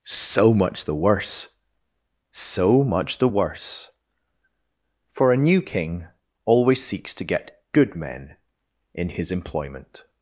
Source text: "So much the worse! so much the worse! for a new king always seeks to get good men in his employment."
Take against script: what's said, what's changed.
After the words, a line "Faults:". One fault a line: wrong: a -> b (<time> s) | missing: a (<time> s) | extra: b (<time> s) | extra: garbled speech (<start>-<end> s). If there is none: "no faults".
"So much the worse! so much the worse! for a new king always seeks to get good men in his employment."
Faults:
no faults